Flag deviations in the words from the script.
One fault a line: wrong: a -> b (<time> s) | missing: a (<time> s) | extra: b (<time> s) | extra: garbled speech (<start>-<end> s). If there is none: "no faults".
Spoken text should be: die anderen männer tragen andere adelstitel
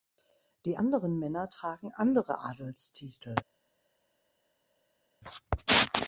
no faults